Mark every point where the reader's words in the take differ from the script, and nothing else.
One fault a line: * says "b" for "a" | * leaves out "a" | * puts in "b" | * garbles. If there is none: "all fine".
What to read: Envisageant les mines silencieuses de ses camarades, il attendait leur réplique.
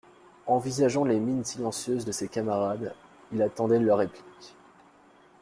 all fine